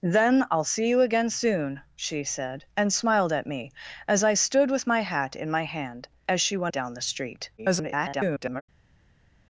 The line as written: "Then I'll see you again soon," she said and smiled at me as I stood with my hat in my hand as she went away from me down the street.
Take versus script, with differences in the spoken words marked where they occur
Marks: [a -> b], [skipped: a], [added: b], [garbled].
"Then I'll see you again soon," she said and smiled at me as I stood with my hat in my hand as she went [skipped: away from me] down the street. [garbled]